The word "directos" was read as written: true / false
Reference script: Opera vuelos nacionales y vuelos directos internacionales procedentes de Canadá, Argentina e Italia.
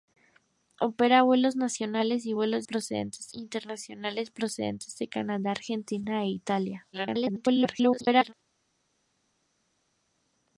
false